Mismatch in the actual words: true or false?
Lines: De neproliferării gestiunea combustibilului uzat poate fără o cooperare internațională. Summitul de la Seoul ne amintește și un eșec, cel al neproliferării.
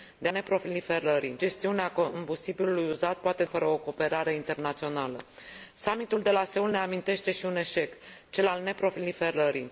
false